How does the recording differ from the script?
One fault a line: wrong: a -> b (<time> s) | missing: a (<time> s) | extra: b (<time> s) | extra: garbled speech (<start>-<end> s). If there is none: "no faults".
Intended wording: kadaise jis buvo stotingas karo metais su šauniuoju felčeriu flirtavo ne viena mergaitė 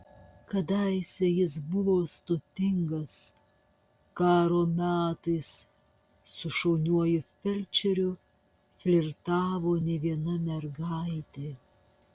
no faults